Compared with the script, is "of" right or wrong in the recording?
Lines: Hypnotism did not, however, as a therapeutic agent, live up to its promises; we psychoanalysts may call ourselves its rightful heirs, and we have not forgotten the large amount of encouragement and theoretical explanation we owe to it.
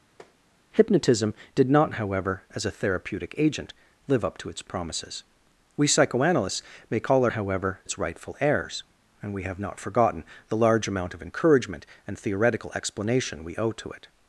right